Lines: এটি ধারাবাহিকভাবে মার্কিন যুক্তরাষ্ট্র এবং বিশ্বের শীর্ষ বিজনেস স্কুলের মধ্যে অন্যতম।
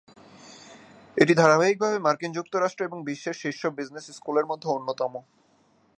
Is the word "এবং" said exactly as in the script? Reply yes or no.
yes